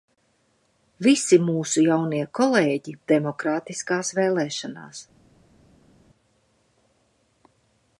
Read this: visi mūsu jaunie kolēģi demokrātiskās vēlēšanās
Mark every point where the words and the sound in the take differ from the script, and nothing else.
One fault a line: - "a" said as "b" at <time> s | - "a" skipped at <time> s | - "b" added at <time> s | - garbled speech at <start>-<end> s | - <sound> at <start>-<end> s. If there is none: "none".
none